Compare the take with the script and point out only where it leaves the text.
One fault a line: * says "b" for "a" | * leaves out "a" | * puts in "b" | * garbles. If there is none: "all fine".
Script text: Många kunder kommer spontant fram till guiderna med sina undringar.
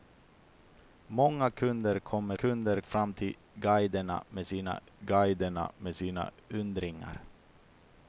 * says "kunder" for "spontant"
* puts in "guiderna med sina"